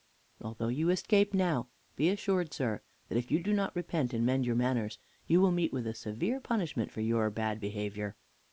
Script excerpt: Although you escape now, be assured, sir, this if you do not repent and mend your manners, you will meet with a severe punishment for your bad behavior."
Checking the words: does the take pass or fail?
fail